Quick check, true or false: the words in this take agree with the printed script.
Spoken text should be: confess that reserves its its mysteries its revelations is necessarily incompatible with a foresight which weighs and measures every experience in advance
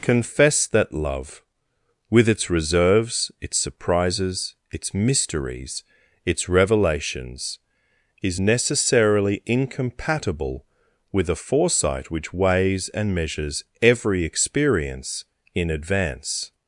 false